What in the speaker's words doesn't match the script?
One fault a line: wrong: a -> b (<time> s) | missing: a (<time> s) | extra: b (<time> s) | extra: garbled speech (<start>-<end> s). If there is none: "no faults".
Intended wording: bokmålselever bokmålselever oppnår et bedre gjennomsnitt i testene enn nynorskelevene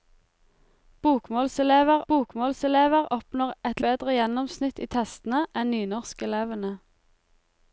no faults